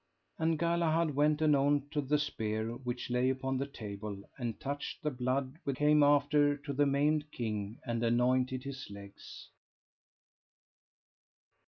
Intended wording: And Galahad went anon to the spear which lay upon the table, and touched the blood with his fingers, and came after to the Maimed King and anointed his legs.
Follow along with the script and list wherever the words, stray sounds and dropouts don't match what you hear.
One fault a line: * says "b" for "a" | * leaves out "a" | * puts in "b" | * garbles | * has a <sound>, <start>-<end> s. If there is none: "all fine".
* leaves out "his fingers and"